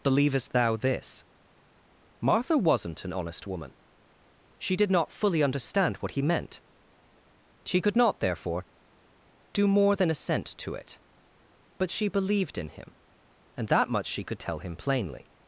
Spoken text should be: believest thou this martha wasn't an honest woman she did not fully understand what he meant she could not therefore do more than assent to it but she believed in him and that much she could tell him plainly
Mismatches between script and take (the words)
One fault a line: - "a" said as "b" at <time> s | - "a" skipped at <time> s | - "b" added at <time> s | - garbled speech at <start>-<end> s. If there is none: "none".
none